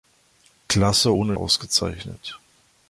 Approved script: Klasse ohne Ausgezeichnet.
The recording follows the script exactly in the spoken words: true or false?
true